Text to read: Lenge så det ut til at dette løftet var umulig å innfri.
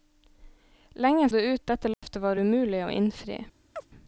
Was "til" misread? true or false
true